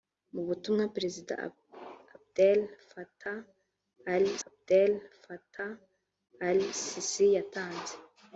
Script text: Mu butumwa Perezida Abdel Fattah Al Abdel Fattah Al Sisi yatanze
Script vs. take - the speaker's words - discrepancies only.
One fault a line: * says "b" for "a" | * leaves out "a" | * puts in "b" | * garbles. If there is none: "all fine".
all fine